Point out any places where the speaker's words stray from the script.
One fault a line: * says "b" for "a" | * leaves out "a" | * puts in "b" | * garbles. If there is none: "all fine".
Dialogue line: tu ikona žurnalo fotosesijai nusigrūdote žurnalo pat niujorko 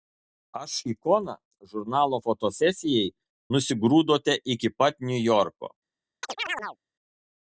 * says "aš" for "tu"
* says "iki" for "žurnalo"